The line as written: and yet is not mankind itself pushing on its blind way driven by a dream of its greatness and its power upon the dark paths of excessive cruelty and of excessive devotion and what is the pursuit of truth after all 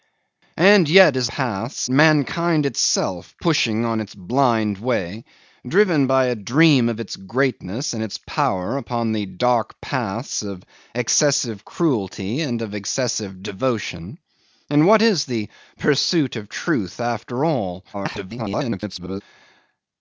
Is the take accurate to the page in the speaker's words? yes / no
no